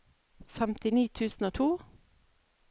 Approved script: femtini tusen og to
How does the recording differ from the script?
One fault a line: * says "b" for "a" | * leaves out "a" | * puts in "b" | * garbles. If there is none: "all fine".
all fine